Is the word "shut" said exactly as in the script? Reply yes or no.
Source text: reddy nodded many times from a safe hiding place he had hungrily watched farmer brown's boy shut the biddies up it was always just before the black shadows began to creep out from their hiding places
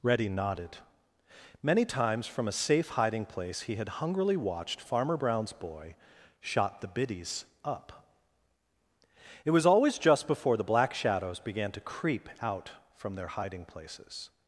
no